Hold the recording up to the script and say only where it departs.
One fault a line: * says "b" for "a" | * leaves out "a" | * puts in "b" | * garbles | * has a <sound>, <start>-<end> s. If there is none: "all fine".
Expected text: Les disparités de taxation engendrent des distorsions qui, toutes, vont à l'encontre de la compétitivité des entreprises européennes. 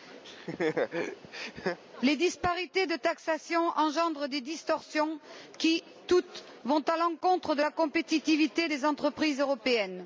* has a laugh, 0.2-1.8 s